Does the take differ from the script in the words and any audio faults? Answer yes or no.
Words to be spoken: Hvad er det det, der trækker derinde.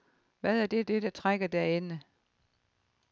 no